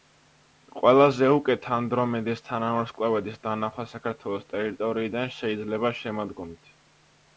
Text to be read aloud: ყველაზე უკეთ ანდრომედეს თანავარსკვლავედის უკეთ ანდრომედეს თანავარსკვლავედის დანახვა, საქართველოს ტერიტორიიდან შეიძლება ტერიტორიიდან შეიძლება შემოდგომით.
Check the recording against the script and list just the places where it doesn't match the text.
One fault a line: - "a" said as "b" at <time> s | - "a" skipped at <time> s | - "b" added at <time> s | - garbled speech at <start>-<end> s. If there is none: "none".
- "უკეთ ანდრომედეს თანავარსკვლავედის" skipped at 3.4 s
- "ტერიტორიიდან შეიძლება" skipped at 5.9 s